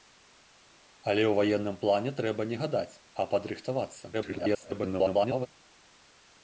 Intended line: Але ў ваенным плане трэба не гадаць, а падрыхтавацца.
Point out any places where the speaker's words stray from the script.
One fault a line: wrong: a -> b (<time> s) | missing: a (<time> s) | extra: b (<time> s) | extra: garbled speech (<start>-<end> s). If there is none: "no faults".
extra: garbled speech (4.1-5.5 s)